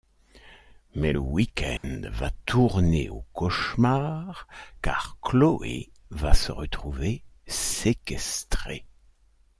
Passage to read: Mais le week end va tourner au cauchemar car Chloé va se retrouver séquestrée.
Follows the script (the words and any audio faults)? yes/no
no